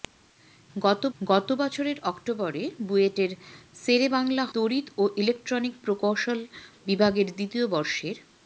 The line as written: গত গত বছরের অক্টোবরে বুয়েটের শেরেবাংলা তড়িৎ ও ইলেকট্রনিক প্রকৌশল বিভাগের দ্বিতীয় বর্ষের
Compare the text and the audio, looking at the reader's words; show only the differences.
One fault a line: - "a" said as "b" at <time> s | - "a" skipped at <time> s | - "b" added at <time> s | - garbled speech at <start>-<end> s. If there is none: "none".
none